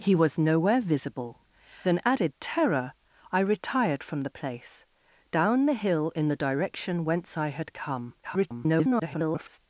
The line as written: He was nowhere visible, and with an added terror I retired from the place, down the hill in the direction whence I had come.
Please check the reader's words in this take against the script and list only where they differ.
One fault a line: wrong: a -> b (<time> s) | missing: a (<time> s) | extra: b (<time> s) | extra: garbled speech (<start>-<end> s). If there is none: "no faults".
missing: and with (1.4 s)
extra: garbled speech (8.2-9.6 s)